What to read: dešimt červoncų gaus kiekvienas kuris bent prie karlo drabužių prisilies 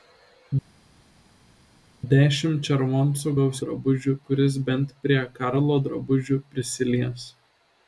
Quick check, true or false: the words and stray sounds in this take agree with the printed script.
false